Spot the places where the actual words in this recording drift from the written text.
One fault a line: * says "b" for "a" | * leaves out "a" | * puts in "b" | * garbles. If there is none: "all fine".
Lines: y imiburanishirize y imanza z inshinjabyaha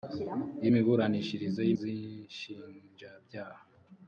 * leaves out "imanza"